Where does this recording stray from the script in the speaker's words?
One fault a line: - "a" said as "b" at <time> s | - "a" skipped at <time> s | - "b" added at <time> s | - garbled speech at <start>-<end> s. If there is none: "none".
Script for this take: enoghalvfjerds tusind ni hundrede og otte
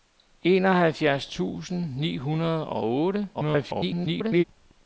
- garbled speech at 3.3-4.4 s